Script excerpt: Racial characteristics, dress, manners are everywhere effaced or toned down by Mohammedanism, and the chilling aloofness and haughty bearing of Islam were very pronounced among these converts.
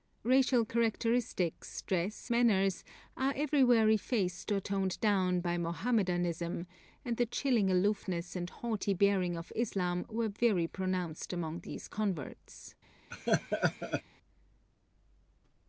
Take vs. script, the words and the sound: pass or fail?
fail